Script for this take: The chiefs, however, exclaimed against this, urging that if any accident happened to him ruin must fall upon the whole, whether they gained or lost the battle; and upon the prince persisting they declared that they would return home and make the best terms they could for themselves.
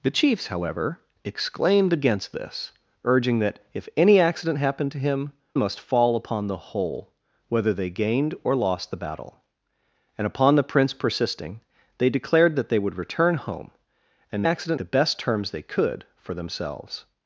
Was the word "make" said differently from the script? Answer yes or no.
yes